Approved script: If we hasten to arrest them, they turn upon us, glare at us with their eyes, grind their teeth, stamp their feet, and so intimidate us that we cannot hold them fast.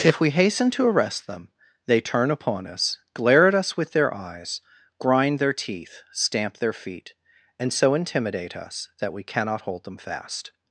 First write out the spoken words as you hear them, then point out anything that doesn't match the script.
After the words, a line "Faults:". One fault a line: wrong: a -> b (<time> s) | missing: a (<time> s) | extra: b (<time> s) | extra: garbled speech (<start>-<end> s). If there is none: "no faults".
If we hasten to arrest them, they turn upon us, glare at us with their eyes, grind their teeth, stamp their feet, and so intimidate us that we cannot hold them fast.
Faults:
no faults